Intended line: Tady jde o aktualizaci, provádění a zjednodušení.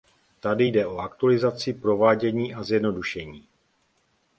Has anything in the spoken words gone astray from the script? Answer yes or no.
no